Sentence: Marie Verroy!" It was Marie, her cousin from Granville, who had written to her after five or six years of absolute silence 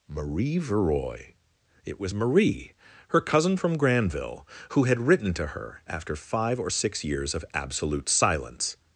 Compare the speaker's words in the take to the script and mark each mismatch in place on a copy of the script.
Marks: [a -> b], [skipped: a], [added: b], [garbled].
Marie Verroy!" It was Marie, her cousin from Granville, who had written to her after five or six years of absolute silence